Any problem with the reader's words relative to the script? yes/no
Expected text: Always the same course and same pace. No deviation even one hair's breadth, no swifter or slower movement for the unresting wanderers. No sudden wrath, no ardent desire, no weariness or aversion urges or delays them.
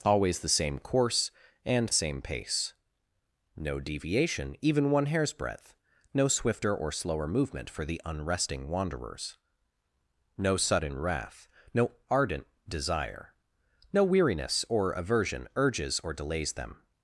no